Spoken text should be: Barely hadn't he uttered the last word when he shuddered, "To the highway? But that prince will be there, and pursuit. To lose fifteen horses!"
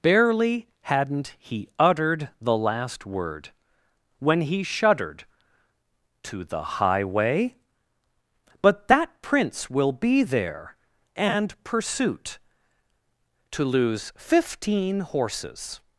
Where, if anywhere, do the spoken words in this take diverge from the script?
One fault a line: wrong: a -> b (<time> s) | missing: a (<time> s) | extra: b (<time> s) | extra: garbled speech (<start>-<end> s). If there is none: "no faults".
no faults